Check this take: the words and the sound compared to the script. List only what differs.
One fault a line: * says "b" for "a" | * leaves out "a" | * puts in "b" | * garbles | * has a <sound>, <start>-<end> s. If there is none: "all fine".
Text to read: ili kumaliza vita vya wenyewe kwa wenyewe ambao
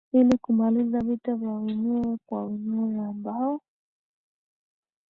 all fine